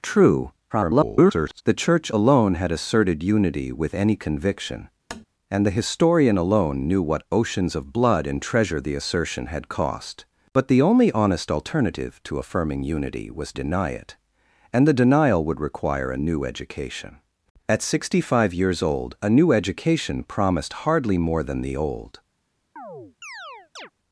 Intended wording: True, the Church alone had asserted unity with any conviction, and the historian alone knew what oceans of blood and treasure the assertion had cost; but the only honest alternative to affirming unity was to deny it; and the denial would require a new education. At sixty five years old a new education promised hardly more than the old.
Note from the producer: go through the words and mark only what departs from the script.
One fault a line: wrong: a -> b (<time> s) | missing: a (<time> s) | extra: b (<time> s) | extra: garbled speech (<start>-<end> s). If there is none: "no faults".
extra: garbled speech (0.7-1.6 s)
missing: to (13.5 s)